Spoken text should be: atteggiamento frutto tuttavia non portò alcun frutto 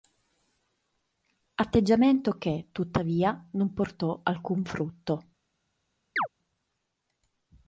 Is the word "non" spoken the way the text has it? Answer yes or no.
yes